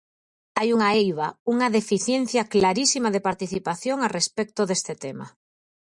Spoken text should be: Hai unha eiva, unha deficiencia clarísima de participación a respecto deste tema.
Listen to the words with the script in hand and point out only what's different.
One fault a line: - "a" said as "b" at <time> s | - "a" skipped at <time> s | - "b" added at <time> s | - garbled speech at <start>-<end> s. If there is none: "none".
none